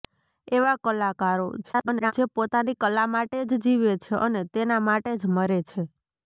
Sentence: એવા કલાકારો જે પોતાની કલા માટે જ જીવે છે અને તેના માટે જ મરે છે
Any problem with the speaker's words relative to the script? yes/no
yes